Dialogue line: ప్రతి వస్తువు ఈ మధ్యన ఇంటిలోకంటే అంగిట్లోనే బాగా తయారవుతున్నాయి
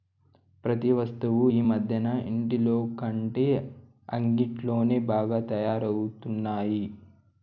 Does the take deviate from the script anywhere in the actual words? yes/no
no